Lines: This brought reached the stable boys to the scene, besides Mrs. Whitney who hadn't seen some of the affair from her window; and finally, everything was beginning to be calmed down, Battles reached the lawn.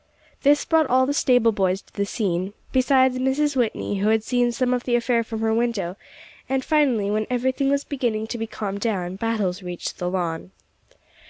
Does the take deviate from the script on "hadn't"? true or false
true